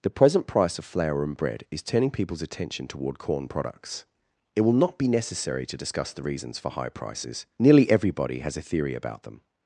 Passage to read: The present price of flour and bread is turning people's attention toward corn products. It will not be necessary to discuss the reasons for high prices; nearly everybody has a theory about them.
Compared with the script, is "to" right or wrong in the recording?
right